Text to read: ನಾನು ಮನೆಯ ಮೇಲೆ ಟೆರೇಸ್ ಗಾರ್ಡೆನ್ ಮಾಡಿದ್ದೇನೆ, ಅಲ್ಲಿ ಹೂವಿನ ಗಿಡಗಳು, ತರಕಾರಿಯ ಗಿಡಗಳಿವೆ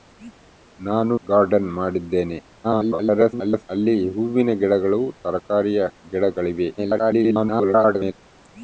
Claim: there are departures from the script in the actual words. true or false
true